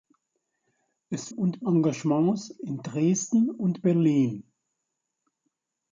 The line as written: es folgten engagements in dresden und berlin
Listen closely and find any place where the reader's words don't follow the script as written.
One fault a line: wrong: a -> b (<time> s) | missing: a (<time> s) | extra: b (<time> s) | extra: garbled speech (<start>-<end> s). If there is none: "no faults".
wrong: folgten -> und (1.3 s)